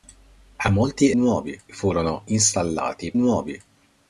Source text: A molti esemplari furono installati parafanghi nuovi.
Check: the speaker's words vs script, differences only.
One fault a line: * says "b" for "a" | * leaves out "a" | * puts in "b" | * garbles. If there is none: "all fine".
* says "nuovi" for "esemplari"
* leaves out "parafanghi"